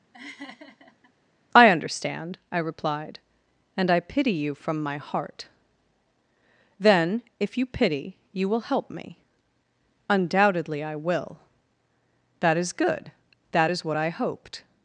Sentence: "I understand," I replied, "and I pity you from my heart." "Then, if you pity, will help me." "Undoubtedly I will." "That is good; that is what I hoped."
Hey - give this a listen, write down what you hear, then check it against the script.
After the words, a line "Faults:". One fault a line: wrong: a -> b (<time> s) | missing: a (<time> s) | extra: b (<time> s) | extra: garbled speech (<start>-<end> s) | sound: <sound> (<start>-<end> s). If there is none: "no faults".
"I understand," I replied, "and I pity you from my heart." "Then, if you pity, you will help me." "Undoubtedly I will." "That is good; that is what I hoped."
Faults:
sound: laugh (0.1-1.1 s)
extra: you (8.3 s)